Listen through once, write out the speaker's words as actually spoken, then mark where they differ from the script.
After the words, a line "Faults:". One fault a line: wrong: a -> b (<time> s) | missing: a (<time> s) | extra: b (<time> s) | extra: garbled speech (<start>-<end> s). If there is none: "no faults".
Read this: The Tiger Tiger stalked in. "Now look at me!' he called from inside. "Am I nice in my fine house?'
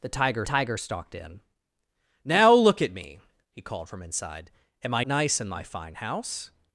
The Tiger Tiger stalked in. "Now look at me!' he called from inside. "Am I nice in my fine house?'
Faults:
no faults